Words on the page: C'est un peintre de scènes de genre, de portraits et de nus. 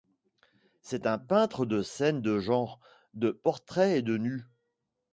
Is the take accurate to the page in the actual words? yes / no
yes